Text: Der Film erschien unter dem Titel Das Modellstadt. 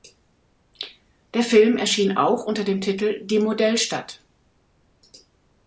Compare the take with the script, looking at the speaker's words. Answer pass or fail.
fail